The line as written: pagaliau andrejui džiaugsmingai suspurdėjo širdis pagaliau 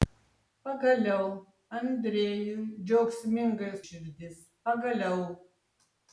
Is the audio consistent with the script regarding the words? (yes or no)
no